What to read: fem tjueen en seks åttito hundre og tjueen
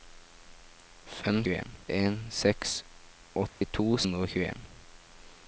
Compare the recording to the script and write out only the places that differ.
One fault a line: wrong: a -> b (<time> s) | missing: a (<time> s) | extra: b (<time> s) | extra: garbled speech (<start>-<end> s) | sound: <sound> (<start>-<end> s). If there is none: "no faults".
sound: dropout (3.5-3.6 s)